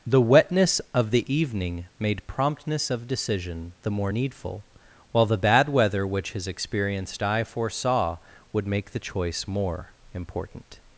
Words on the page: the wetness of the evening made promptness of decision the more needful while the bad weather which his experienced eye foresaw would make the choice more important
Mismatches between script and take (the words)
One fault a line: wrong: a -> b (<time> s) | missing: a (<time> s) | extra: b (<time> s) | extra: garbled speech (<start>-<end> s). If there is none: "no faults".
no faults